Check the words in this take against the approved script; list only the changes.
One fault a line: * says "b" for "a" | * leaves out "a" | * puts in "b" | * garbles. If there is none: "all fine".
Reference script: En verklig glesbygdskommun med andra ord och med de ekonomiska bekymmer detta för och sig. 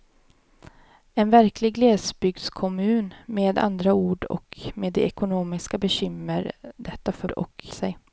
all fine